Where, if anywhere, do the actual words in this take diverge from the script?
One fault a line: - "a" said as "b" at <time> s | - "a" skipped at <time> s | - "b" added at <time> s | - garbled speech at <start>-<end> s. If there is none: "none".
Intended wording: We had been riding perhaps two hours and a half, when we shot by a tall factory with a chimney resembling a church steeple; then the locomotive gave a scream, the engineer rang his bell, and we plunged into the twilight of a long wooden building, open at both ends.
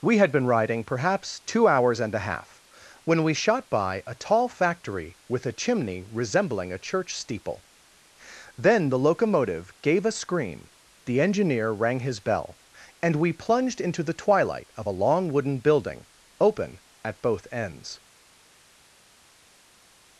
none